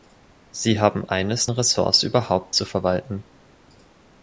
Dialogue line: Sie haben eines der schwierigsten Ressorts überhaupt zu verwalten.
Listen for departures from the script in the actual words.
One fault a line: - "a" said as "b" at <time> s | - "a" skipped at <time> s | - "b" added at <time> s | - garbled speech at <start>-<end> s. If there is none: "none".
- "der schwierigsten" skipped at 1.5 s